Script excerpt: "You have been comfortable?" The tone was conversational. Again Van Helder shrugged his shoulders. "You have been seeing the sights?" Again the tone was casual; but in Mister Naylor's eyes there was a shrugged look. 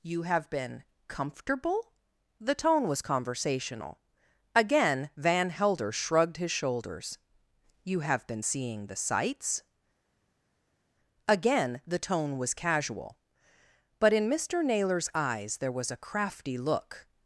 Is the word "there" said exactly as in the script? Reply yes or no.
yes